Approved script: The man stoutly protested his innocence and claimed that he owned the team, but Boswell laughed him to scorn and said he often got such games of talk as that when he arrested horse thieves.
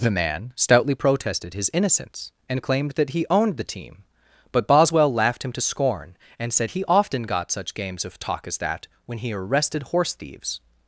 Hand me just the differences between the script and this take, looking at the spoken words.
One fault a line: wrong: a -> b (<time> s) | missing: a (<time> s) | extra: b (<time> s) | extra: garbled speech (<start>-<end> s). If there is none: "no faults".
no faults